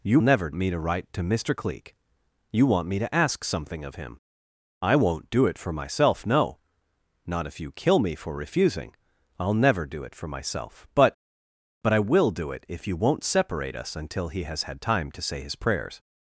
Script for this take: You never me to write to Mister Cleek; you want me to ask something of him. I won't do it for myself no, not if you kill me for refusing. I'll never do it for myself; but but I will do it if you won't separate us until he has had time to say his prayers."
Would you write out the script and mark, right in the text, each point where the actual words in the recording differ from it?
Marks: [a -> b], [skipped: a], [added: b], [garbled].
You never me to write to Mister Cleek; you want me to ask something of him. I won't do it for myself no, not if you kill me for refusing. I'll never do it for myself; but but I will do it if you won't separate us until he has had time to say his prayers."